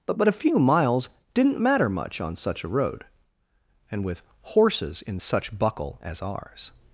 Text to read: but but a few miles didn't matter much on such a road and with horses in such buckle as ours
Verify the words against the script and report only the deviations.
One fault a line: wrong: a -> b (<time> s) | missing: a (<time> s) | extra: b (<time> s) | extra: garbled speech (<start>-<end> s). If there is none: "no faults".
no faults